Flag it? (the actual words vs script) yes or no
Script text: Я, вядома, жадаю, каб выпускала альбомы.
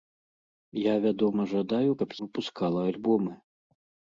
no